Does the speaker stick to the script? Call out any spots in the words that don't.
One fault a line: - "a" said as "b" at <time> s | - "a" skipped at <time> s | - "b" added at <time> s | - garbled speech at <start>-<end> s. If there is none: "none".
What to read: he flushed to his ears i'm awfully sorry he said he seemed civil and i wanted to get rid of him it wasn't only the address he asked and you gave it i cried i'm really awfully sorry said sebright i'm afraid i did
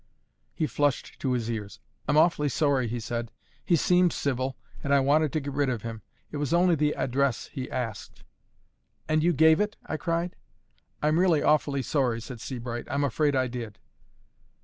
- "wasn't" said as "was" at 6.4 s